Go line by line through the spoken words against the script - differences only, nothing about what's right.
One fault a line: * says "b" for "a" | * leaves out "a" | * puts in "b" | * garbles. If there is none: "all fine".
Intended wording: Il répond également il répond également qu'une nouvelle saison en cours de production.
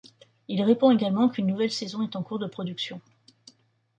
* leaves out "il répond également"
* puts in "est"